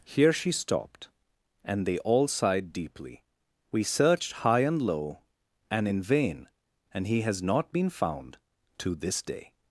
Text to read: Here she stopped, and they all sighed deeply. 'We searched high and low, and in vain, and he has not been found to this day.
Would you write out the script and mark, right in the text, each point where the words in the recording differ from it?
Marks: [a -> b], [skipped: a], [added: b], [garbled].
Here she stopped, and they all sighed deeply. 'We searched high and low, and in vain, and he has not been found to this day.